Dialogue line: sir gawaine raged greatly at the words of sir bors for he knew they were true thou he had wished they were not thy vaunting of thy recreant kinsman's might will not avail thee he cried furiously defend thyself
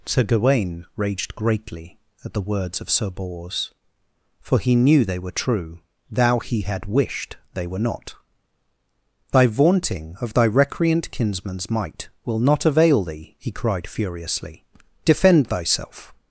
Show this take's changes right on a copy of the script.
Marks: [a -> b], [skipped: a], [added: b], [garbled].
sir gawaine raged greatly at the words of sir bors for he knew they were true thou he had wished they were not thy vaunting of thy recreant kinsman's might will not avail thee he cried furiously defend thyself